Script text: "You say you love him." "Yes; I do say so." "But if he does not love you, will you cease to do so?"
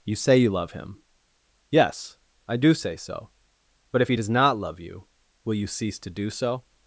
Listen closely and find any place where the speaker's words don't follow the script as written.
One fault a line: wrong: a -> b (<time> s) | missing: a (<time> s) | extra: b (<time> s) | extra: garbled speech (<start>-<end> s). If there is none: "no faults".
no faults